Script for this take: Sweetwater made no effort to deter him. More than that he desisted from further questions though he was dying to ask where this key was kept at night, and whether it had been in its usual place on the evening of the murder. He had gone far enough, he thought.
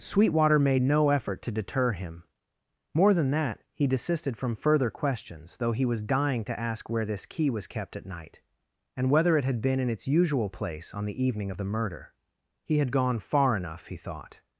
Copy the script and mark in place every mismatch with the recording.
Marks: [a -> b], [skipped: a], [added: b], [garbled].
Sweetwater made no effort to deter him. More than that he desisted from further questions though he was dying to ask where this key was kept at night, and whether it had been in its usual place on the evening of the murder. He had gone far enough, he thought.